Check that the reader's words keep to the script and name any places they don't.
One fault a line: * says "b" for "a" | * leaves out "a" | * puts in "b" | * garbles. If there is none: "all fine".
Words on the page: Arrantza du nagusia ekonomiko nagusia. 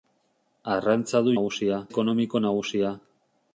all fine